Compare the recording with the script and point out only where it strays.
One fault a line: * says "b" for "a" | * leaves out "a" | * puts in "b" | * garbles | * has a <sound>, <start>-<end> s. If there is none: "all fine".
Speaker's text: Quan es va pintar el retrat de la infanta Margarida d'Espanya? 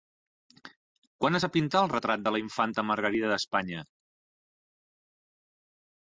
all fine